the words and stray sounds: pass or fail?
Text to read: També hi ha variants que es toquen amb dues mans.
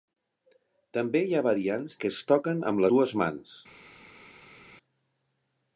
pass